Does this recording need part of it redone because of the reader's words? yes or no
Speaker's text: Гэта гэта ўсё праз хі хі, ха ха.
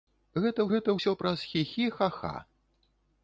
no